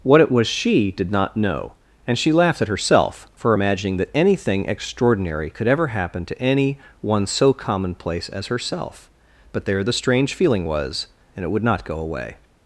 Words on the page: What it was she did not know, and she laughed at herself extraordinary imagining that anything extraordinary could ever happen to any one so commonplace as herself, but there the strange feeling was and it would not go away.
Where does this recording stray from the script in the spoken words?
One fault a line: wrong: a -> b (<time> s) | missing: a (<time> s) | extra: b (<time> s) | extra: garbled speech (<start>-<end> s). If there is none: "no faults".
wrong: extraordinary -> for (3.3 s)